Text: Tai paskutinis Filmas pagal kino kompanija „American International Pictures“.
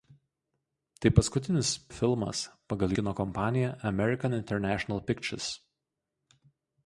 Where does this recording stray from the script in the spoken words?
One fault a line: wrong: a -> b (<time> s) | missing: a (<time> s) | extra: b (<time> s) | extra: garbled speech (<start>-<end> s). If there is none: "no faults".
no faults